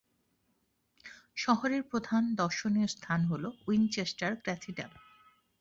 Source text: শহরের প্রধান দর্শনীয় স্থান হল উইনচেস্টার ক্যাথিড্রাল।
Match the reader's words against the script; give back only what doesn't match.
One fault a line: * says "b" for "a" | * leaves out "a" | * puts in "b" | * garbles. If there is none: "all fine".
all fine